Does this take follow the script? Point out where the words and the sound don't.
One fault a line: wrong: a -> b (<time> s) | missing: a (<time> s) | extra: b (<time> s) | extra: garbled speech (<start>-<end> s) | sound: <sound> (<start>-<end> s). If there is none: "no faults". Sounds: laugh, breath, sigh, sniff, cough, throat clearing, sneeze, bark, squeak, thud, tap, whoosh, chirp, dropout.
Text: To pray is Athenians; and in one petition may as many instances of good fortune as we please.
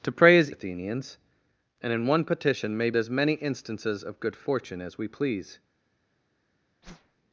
sound: whoosh (6.8-7.2 s)